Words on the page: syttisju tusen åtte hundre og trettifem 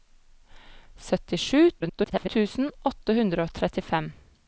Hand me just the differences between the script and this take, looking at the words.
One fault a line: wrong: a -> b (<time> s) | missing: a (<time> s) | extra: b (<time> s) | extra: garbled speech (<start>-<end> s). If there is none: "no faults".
extra: garbled speech (1.8-2.3 s)